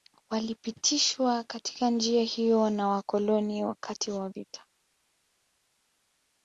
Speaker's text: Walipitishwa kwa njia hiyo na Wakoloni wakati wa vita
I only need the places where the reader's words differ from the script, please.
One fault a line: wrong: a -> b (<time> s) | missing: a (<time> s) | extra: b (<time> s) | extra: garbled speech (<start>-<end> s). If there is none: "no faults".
wrong: kwa -> katika (1.4 s)